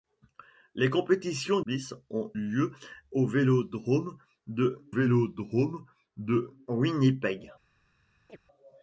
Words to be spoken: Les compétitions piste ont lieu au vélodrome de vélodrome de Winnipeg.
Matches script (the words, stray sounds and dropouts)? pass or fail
fail